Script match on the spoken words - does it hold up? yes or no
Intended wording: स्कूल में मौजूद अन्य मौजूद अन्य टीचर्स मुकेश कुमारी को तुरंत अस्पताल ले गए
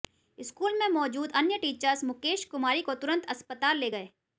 no